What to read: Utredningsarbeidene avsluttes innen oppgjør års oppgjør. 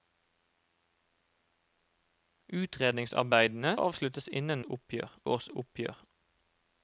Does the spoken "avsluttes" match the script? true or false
true